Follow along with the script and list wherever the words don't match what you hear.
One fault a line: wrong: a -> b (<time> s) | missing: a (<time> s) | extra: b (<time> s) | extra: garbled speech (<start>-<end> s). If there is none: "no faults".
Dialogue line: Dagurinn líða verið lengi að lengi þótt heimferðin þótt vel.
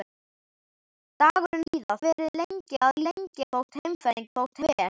no faults